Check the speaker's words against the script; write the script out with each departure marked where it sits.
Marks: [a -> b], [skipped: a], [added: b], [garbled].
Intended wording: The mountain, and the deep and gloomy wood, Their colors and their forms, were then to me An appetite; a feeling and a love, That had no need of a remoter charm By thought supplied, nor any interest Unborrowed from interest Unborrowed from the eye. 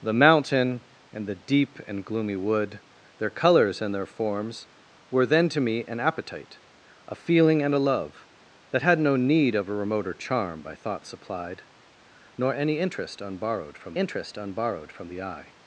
The mountain, and the deep and gloomy wood, Their colors and their forms, were then to me An appetite; a feeling and a love, That had no need of a remoter charm By thought supplied, nor any interest Unborrowed from interest Unborrowed from the eye.